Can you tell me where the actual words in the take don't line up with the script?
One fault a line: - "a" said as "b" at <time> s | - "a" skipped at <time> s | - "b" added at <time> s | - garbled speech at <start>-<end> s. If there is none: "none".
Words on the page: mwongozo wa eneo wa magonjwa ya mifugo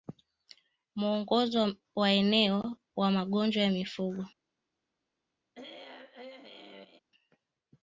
none